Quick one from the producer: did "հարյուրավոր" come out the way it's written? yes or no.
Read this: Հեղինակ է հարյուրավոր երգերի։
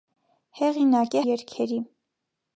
no